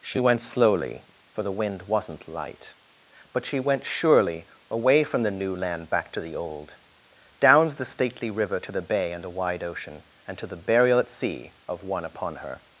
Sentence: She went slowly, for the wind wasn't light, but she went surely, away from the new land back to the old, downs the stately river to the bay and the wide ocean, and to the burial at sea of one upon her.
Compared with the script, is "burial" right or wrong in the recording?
right